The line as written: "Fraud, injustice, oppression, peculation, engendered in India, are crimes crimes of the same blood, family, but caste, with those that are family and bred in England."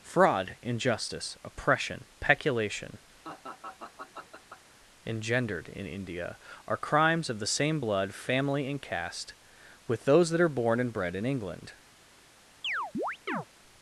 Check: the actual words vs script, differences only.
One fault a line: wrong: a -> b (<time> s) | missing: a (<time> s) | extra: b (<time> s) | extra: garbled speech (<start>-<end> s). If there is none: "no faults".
missing: crimes (7.3 s)
wrong: but -> and (8.7 s)
wrong: family -> born (10.5 s)